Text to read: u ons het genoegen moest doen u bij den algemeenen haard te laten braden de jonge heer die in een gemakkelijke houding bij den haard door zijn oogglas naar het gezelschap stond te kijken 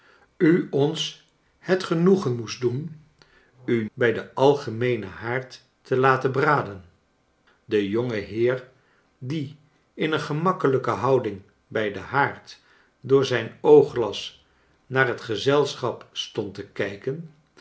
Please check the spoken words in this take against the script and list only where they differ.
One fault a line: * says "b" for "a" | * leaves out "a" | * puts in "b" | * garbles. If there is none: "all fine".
all fine